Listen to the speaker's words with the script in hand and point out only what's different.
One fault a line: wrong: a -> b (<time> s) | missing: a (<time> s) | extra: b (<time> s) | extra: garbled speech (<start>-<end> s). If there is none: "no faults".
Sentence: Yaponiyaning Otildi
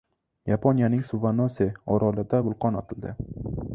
extra: Suvanose orolida vulqon (1.0 s)